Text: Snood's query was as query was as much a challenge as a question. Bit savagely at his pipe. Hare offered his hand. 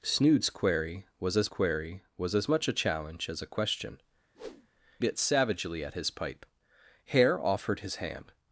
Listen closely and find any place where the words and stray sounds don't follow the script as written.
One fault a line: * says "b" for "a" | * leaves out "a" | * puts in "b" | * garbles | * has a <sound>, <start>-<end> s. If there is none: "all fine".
* has a whoosh, 4.3-4.7 s